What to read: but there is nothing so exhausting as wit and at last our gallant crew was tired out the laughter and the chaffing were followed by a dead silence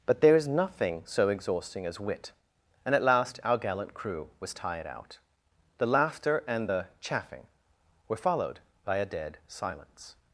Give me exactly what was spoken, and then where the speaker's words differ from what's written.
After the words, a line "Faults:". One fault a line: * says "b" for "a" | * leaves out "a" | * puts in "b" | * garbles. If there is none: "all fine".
but there is nothing so exhausting as wit and at last our gallant crew was tired out the laughter and the chaffing were followed by a dead silence
Faults:
all fine